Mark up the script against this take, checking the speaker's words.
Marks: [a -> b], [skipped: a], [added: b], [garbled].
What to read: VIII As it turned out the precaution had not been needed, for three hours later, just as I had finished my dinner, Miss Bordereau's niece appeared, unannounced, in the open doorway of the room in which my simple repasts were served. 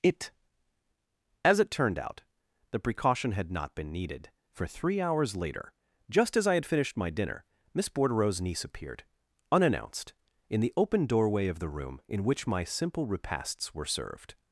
[VIII -> It] As it turned out the precaution had not been needed, for three hours later, just as I had finished my dinner, Miss Bordereau's niece appeared, unannounced, in the open doorway of the room in which my simple repasts were served.